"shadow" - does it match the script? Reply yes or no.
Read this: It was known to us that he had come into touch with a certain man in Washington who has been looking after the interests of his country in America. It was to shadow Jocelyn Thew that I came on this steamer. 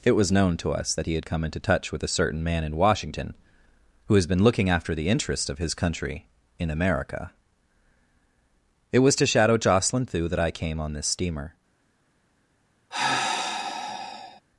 yes